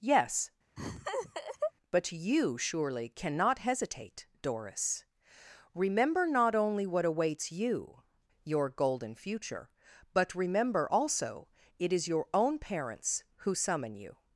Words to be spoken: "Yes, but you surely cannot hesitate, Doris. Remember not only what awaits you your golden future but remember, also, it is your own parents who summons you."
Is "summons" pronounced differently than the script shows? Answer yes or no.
yes